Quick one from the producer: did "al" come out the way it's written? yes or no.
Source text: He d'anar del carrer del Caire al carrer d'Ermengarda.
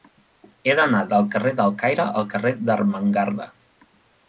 yes